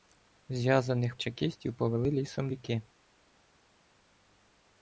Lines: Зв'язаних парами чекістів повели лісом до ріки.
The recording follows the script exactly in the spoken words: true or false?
false